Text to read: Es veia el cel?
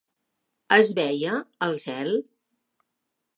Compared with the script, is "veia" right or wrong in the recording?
right